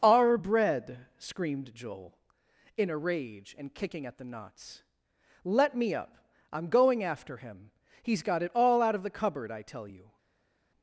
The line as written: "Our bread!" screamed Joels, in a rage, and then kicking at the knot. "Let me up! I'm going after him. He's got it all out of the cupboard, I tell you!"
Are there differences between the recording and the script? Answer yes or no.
yes